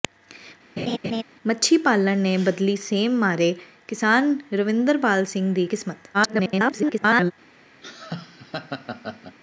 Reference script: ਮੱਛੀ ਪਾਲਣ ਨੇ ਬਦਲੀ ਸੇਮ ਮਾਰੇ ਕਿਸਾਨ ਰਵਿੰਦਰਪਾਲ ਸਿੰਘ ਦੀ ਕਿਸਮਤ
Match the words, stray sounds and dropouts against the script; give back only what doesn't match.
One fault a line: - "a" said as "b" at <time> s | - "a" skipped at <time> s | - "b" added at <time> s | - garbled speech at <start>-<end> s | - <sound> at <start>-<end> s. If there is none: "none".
- laugh at 0.8-1.2 s
- garbled speech at 6.1-7.3 s
- laugh at 7.8-9.4 s